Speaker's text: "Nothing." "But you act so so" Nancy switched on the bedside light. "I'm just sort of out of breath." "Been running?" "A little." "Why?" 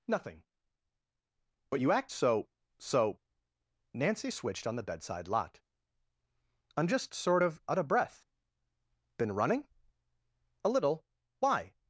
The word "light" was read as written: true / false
false